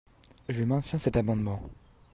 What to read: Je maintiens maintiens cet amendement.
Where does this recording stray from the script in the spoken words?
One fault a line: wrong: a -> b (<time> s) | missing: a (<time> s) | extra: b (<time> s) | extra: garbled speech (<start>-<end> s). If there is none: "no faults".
missing: maintiens (1.0 s)